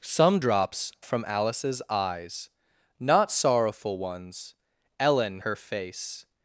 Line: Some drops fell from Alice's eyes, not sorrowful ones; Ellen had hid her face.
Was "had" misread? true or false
true